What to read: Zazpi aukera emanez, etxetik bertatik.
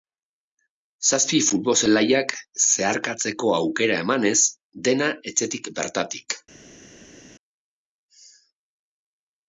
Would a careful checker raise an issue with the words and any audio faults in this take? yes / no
yes